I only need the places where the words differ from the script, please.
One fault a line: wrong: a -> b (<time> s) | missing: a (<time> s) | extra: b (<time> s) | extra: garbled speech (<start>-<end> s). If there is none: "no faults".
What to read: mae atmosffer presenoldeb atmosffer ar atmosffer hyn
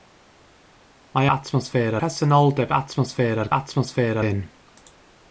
no faults